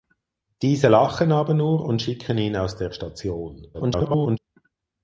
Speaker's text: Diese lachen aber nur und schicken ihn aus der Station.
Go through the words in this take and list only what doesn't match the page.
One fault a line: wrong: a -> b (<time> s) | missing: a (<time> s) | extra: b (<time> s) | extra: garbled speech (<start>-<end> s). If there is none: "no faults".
extra: garbled speech (3.7-4.4 s)